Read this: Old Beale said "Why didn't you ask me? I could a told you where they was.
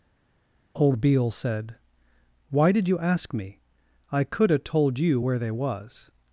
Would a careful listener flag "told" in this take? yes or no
no